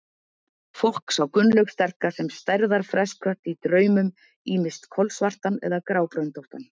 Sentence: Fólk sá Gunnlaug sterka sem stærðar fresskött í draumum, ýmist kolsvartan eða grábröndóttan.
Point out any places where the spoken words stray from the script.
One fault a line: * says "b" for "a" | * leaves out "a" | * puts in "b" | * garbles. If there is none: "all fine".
all fine